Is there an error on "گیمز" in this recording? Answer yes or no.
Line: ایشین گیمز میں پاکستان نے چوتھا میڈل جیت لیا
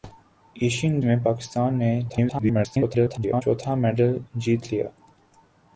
yes